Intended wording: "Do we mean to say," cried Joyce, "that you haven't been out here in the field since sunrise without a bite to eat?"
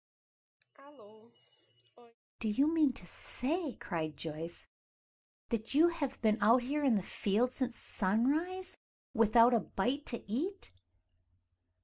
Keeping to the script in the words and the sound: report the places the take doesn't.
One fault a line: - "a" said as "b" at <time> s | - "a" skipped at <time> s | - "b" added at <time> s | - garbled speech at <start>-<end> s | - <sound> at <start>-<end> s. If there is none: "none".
- cough at 0.6-2.2 s
- "we" said as "you" at 2.5 s
- "haven't" said as "have" at 5.9 s